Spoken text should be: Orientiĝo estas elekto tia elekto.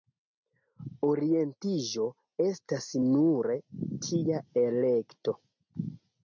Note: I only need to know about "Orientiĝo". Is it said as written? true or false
true